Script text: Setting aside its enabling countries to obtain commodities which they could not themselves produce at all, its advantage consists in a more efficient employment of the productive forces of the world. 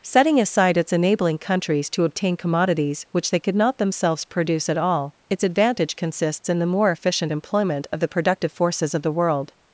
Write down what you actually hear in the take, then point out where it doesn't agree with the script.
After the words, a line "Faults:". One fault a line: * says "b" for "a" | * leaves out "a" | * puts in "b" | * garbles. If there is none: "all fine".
Setting aside its enabling countries to obtain commodities which they could not themselves produce at all, its advantage consists in the more efficient employment of the productive forces of the world.
Faults:
* says "the" for "a"